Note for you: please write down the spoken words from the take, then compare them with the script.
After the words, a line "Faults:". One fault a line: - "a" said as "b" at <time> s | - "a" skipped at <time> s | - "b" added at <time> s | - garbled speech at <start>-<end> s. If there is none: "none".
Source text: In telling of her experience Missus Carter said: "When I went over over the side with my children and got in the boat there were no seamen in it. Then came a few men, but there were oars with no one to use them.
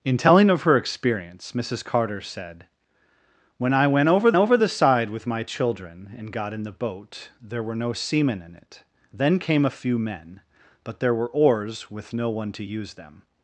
In telling of her experience Missus Carter said: "When I went over over the side with my children and got in the boat there were no seamen in it. Then came a few men, but there were oars with no one to use them.
Faults:
none